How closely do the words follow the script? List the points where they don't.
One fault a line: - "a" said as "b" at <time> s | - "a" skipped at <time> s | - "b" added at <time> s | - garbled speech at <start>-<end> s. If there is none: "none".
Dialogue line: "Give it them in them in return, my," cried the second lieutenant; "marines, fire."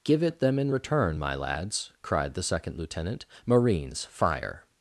- "them in" skipped at 0.7 s
- "lads" added at 1.3 s